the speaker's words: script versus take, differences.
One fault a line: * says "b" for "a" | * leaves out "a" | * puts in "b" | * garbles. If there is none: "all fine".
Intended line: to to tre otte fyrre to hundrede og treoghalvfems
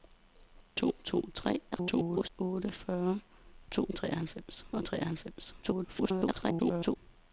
* garbles
* says "treoghalvfems" for "hundrede"
* garbles